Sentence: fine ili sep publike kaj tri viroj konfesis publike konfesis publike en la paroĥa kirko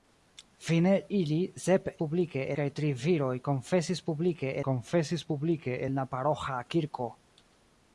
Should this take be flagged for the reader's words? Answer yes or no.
no